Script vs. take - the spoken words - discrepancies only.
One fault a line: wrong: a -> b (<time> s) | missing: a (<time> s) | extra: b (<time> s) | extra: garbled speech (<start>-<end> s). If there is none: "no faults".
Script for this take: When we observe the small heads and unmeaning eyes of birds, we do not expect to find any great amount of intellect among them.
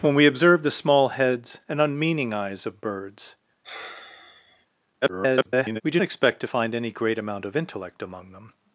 extra: garbled speech (5.0-5.8 s)
missing: not (6.0 s)